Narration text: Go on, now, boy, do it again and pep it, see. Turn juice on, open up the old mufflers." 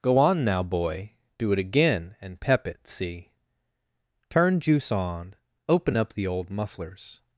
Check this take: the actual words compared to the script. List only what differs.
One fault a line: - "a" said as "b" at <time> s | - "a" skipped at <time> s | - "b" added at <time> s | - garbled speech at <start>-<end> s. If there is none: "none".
none